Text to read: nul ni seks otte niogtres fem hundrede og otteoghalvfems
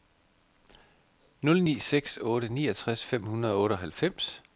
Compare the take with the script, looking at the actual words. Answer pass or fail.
pass